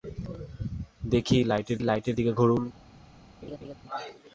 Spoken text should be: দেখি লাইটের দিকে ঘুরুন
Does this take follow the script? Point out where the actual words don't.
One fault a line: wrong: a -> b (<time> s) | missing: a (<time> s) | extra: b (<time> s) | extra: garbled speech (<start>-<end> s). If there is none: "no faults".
extra: লাইটের (1.8 s)